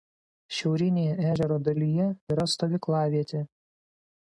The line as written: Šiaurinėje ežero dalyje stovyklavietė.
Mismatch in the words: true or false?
true